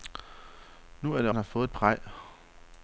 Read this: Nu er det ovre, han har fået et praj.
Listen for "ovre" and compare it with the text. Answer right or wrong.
wrong